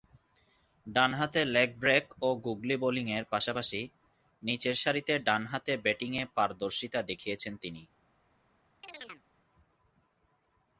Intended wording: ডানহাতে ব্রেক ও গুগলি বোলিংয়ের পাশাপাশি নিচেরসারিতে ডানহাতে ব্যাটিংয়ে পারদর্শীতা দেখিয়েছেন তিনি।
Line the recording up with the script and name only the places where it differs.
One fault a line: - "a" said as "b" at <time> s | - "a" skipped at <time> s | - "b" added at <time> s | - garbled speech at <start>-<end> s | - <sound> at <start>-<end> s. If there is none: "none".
- "লেগ" added at 1.5 s
- chirp at 8.8-9.3 s